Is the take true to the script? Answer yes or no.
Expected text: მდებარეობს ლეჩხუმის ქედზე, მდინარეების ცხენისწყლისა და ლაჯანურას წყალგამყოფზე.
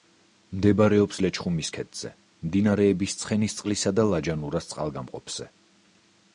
yes